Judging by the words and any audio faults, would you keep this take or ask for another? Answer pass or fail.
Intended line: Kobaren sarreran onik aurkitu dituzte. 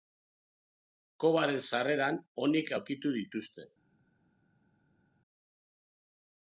pass